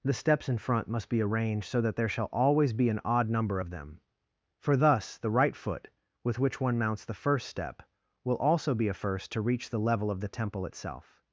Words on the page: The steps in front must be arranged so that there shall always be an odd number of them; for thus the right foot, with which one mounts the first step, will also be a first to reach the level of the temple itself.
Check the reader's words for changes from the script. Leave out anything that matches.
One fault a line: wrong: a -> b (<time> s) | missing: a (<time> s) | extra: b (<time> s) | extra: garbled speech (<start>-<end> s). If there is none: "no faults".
no faults